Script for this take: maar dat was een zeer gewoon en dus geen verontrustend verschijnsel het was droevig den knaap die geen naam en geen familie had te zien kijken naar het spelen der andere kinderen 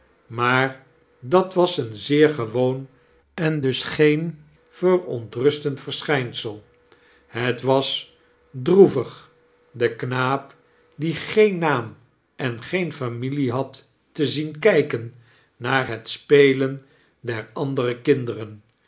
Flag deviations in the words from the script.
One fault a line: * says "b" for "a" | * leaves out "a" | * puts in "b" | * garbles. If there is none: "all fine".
all fine